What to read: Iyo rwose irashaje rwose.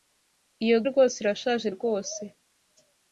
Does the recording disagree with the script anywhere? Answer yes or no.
no